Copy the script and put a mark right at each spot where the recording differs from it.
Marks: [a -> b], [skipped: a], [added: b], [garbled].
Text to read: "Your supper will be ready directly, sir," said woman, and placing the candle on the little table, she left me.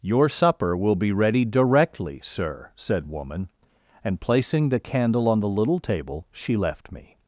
"Your supper will be ready directly, sir," said woman, and placing the candle on the little table, she left me.